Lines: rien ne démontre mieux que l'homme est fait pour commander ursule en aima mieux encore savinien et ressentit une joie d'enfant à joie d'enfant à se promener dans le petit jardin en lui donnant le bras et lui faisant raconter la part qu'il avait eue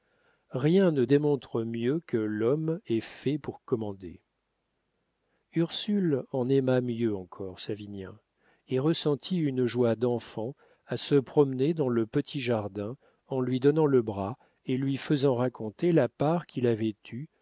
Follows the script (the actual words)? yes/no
no